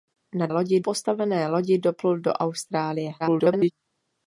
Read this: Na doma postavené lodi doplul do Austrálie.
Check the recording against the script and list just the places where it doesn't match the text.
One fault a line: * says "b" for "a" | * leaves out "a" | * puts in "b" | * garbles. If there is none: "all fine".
* says "lodi" for "doma"
* garbles